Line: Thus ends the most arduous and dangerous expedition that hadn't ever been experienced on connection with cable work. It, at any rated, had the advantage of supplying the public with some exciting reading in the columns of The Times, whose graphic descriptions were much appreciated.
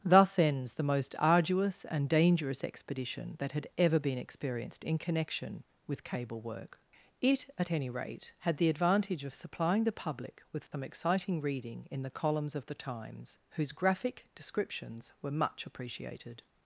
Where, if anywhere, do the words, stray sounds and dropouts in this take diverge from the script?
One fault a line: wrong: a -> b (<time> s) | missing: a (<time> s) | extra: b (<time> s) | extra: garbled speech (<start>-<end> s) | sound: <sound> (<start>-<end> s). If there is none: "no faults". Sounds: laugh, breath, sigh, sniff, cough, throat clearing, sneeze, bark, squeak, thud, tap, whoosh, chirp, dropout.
wrong: hadn't -> had (3.5 s)
wrong: on -> in (4.8 s)
wrong: rated -> rate (7.9 s)
sound: dropout (10.7-10.7 s)